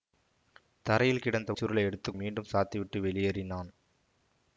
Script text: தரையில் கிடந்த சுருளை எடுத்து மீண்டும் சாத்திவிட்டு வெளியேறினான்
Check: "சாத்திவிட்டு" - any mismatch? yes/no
no